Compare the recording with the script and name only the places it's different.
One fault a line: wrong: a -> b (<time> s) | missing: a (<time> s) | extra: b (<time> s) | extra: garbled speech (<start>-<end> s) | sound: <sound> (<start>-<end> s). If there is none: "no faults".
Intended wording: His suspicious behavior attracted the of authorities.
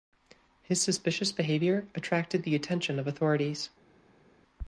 extra: attention (2.6 s)